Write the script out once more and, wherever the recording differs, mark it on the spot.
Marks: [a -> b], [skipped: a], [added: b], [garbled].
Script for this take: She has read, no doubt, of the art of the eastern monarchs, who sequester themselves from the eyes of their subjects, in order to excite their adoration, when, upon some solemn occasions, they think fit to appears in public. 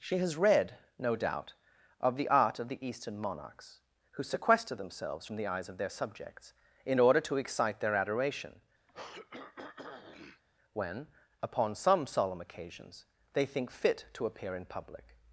She has read, no doubt, of the art of the eastern monarchs, who sequester themselves from the eyes of their subjects, in order to excite their adoration, when, upon some solemn occasions, they think fit to [appears -> appear] in public.